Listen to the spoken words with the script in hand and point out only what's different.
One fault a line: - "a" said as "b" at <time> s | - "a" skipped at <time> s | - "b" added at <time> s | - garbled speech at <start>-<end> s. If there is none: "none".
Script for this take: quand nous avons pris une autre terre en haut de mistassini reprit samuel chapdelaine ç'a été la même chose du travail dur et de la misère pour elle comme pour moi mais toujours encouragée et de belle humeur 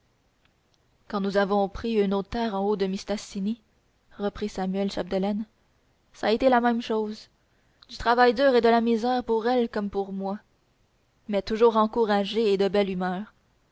none